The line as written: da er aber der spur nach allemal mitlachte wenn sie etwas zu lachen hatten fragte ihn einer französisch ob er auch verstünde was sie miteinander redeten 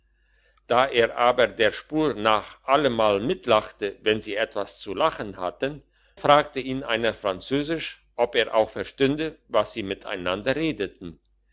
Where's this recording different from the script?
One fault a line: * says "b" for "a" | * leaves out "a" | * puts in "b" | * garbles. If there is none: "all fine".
all fine